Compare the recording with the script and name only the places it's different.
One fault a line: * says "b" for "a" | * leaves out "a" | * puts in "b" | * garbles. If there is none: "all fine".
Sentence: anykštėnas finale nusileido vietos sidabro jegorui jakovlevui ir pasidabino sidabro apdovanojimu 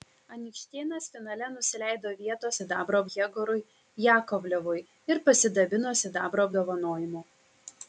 all fine